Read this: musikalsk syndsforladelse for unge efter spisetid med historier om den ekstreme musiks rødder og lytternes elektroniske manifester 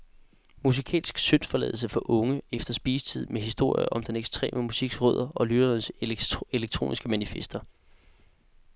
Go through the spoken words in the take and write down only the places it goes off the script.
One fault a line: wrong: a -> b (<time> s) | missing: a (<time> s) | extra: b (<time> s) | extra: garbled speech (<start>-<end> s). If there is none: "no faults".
no faults